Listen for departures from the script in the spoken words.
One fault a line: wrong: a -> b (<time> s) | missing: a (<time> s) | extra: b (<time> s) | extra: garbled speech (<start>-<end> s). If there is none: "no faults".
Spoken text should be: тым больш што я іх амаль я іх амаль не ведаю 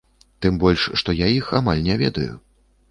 missing: я іх амаль (1.9 s)